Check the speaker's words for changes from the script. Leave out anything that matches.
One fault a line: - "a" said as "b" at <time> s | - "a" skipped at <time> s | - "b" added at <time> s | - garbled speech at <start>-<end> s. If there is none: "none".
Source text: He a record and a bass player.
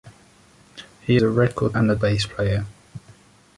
none